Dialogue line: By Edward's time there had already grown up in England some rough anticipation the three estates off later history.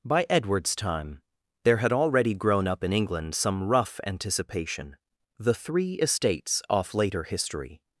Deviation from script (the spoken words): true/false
false